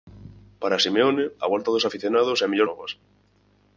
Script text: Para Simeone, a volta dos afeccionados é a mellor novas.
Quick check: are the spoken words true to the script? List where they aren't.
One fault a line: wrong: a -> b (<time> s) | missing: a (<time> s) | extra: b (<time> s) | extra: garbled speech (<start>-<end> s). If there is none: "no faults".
no faults